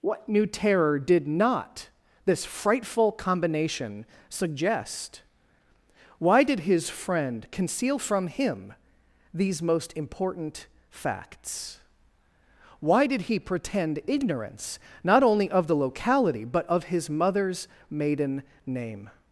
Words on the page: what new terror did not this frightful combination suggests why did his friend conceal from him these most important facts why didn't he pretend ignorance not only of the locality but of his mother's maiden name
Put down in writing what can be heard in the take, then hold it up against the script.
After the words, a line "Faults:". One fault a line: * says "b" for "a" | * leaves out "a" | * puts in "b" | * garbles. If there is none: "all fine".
what new terror did not this frightful combination suggest why did his friend conceal from him these most important facts why did he pretend ignorance not only of the locality but of his mother's maiden name
Faults:
* says "suggest" for "suggests"
* says "did" for "didn't"